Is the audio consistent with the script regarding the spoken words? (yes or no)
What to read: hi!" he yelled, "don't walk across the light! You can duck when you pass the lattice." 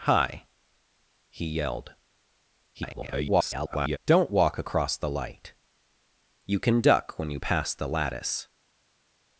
no